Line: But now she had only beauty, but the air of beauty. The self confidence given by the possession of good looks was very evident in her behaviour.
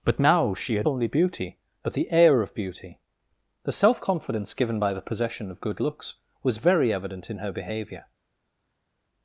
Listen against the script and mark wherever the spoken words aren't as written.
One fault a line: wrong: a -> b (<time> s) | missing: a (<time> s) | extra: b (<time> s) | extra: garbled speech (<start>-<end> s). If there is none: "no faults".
no faults